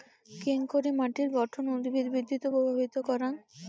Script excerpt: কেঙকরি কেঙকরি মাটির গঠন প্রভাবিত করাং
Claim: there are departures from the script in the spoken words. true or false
true